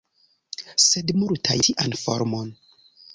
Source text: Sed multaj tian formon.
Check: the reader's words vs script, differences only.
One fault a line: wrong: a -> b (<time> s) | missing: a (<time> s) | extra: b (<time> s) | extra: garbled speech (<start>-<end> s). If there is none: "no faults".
no faults